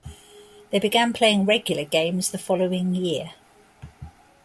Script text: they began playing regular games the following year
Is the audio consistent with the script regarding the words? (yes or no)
yes